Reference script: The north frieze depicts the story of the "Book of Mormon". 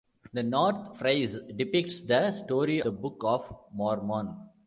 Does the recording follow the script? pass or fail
fail